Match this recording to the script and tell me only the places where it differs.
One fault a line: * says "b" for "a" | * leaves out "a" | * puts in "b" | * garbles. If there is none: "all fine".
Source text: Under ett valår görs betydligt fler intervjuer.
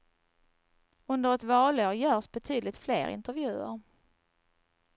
all fine